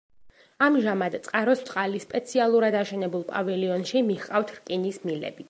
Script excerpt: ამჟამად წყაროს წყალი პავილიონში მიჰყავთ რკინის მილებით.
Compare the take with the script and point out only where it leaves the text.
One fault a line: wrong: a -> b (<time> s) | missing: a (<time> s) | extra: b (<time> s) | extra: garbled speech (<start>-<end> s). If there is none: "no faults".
extra: სპეციალურად აშენებულ (2.0 s)